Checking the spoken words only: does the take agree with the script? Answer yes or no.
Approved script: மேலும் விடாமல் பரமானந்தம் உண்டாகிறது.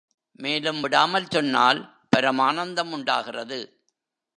no